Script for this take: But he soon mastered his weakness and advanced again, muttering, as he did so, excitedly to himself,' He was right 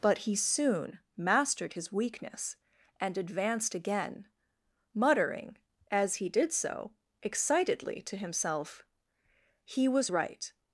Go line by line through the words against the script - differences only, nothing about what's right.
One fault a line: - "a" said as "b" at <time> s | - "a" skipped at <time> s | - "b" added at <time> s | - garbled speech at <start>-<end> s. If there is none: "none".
none